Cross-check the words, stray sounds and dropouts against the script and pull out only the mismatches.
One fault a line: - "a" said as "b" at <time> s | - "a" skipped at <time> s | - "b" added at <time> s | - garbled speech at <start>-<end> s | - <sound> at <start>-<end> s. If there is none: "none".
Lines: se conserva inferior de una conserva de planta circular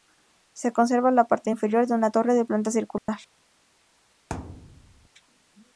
- "la parte" added at 1.1 s
- "conserva" said as "torre" at 2.1 s
- dropout at 3.0-3.1 s
- thud at 4.3-5.1 s